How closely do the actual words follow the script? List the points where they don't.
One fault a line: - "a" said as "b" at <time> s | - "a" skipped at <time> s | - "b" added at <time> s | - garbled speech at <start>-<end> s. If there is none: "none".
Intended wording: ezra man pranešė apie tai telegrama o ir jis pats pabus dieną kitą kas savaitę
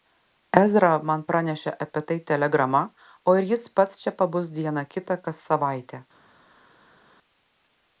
- "čia" added at 4.0 s